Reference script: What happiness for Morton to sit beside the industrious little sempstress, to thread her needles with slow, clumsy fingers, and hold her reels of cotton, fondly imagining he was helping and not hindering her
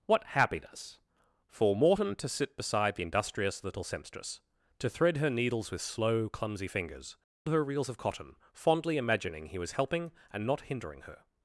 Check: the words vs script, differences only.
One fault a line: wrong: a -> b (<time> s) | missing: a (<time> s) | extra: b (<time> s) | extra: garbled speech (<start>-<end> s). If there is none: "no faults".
missing: and hold (7.2 s)